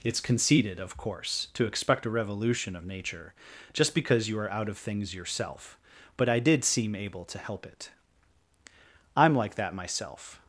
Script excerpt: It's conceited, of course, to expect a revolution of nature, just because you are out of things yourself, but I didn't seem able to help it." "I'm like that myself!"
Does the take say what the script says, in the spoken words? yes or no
no